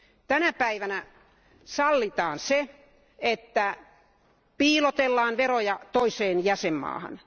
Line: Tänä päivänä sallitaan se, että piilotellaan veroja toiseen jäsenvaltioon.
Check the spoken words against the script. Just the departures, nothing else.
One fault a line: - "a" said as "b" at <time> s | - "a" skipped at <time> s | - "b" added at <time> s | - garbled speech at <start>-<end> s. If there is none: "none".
none